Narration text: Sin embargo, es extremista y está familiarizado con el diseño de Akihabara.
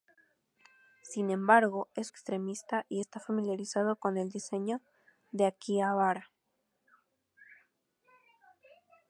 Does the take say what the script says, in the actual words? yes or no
yes